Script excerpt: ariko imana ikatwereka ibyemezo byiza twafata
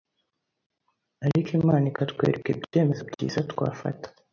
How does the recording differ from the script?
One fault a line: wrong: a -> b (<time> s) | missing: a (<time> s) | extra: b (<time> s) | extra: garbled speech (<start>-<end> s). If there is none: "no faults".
no faults